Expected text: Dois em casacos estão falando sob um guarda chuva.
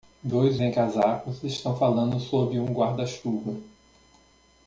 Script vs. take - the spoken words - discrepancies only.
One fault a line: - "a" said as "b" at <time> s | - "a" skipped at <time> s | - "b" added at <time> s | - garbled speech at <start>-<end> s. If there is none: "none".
none